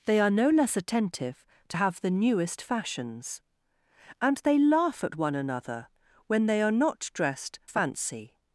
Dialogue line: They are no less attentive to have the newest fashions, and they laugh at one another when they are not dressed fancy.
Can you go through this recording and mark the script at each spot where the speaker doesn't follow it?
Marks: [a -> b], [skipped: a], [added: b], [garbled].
They are no less attentive to have the newest fashions, and they laugh at one another when they are not dressed fancy.